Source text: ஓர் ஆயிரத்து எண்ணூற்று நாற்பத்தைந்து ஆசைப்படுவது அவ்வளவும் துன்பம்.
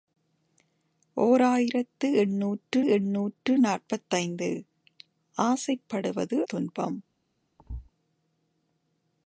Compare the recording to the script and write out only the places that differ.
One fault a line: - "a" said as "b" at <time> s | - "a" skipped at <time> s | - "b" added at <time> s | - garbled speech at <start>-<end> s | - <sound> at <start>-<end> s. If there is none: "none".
- "எண்ணூற்று" added at 2.9 s
- "அவ்வளவும்" skipped at 6.4 s
- thud at 7.6-7.9 s